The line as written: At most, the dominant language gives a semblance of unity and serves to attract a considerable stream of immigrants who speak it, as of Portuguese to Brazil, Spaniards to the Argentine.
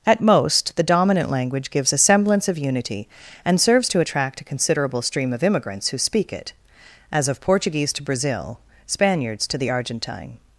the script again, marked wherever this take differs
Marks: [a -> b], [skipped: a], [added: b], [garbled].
At most, the dominant language gives a semblance of unity and serves to attract a considerable stream of immigrants who speak it, as of Portuguese to Brazil, Spaniards to the Argentine.